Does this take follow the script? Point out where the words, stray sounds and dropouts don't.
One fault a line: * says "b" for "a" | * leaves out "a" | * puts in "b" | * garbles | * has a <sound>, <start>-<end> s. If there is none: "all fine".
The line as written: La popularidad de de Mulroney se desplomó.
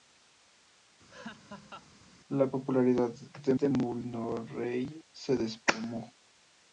* has a laugh, 1.1-1.9 s